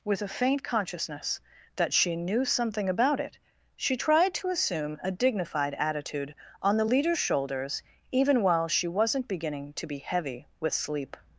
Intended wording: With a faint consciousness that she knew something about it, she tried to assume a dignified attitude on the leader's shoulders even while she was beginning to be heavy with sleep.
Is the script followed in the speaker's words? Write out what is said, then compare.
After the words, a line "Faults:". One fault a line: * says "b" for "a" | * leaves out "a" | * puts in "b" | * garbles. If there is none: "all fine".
With a faint consciousness that she knew something about it, she tried to assume a dignified attitude on the leader's shoulders even while she wasn't beginning to be heavy with sleep.
Faults:
* says "wasn't" for "was"